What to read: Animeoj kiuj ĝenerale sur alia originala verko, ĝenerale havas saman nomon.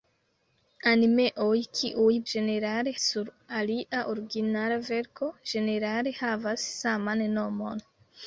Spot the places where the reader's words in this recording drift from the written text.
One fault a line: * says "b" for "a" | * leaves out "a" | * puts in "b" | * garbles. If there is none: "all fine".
all fine